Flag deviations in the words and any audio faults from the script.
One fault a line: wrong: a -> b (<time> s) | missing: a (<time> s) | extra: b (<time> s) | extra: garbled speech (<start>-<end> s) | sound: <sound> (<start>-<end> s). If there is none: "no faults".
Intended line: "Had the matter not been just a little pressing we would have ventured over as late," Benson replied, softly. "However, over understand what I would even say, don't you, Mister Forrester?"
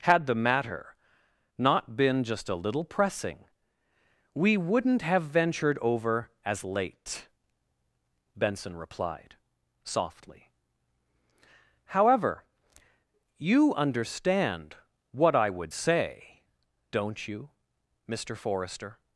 wrong: would -> wouldn't (4.6 s)
wrong: over -> you (13.4 s)
missing: even (15.7 s)